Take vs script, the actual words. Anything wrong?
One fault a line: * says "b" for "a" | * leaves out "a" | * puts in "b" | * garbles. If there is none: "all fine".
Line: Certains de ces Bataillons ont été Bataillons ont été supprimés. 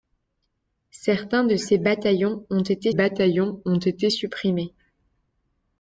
all fine